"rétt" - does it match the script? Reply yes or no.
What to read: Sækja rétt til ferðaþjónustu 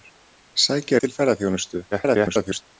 no